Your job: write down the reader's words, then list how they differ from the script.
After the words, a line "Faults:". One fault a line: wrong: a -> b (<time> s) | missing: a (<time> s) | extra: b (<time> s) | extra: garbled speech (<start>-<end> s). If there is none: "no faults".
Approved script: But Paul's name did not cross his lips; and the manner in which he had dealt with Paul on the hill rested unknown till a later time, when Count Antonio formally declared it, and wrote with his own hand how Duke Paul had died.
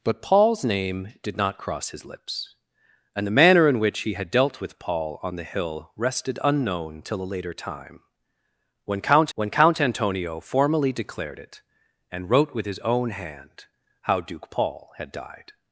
But Paul's name did not cross his lips; and the manner in which he had dealt with Paul on the hill rested unknown till a later time, when Count when Count Antonio formally declared it, and wrote with his own hand how Duke Paul had died.
Faults:
extra: when Count (9.3 s)